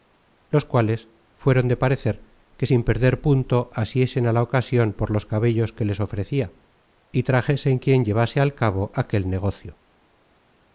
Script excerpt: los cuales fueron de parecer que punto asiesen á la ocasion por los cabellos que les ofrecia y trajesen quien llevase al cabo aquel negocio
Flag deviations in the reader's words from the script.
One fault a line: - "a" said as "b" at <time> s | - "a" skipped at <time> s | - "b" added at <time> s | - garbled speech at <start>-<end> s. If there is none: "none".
- "sin perder" added at 2.7 s